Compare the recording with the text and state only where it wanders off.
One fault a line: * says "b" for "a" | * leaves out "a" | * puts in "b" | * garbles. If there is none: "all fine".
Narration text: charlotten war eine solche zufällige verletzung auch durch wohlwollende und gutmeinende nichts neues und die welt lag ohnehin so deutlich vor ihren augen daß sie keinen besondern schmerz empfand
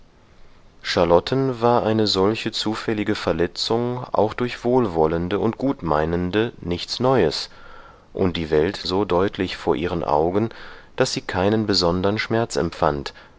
* leaves out "lag ohnehin"